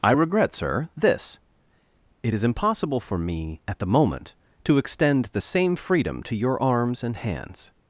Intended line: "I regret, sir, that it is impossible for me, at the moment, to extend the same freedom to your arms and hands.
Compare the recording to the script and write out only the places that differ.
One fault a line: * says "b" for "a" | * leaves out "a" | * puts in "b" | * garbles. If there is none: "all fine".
* says "this" for "that"